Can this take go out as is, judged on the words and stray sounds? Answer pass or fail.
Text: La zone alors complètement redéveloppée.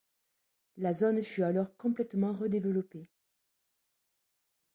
fail